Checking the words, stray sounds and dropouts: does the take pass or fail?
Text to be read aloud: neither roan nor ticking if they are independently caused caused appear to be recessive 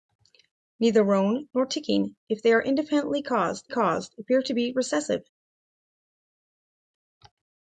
pass